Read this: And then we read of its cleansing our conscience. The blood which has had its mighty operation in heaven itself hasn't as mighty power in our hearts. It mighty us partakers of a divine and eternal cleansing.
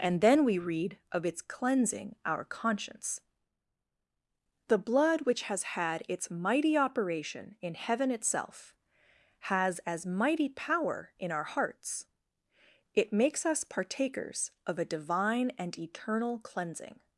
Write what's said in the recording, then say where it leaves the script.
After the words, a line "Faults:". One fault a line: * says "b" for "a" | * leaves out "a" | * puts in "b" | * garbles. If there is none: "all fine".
And then we read of its cleansing our conscience. The blood which has had its mighty operation in heaven itself has as mighty power in our hearts. It makes us partakers of a divine and eternal cleansing.
Faults:
* says "has" for "hasn't"
* says "makes" for "mighty"